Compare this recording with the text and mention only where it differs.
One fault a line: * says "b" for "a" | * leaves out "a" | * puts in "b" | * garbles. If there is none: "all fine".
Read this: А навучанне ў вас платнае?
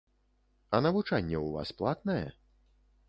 all fine